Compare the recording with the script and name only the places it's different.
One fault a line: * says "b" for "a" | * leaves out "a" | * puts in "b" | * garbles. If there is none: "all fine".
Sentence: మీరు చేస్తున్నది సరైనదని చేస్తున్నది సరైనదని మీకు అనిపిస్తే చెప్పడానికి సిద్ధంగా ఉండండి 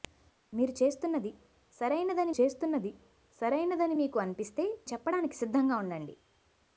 all fine